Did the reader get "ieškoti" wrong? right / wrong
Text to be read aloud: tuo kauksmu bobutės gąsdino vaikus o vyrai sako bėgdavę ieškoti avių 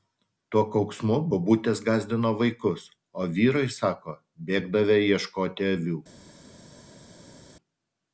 right